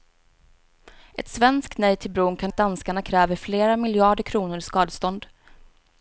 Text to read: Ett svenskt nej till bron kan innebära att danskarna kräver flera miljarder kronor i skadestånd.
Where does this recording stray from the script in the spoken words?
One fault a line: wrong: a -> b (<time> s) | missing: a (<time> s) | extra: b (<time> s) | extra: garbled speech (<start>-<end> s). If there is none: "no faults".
missing: innebära (2.5 s)